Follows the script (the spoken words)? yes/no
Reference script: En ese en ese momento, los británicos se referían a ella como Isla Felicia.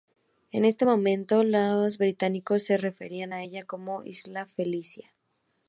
no